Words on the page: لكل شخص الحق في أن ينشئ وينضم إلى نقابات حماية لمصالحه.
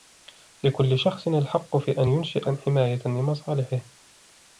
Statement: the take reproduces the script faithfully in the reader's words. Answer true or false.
false